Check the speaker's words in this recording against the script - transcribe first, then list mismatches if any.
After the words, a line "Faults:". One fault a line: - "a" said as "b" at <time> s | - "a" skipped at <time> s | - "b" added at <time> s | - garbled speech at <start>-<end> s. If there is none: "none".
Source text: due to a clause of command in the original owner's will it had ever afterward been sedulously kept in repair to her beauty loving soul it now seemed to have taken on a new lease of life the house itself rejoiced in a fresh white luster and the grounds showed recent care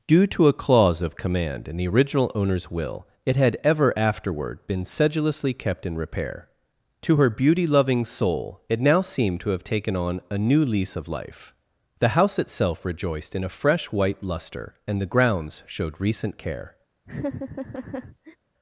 due to a clause of command in the original owner's will it had ever afterward been sedulously kept in repair to her beauty loving soul it now seemed to have taken on a new lease of life the house itself rejoiced in a fresh white luster and the grounds showed recent care
Faults:
none